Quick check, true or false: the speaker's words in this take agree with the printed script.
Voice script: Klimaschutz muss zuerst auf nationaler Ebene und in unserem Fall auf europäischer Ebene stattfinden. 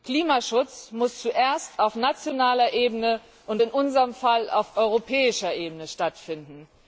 true